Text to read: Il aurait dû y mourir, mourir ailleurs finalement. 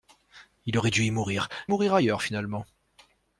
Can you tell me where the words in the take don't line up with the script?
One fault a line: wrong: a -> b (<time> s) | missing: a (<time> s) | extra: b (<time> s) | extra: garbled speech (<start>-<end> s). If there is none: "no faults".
no faults